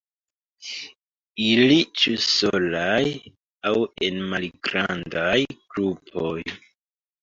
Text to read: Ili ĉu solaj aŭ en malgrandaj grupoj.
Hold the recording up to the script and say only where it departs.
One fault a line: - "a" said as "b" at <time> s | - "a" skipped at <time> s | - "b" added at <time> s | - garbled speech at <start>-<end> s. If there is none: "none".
none